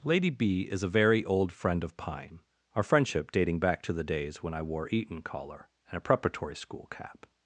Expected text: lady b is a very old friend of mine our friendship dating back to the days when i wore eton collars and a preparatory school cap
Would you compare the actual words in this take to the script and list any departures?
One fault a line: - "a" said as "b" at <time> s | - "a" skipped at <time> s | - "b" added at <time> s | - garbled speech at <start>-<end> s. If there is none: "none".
- "mine" said as "pine" at 1.9 s
- "collars" said as "collar" at 5.2 s